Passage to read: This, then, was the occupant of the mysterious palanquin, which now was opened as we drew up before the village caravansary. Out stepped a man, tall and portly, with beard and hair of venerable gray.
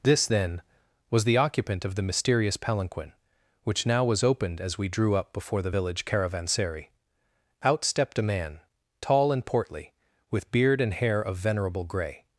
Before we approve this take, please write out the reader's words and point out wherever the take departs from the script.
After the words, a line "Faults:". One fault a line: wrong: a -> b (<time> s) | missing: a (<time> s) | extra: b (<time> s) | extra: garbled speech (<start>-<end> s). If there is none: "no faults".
This, then, was the occupant of the mysterious palanquin, which now was opened as we drew up before the village caravansary. Out stepped a man, tall and portly, with beard and hair of venerable gray.
Faults:
no faults